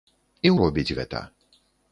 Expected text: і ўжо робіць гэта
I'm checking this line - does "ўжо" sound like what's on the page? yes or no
no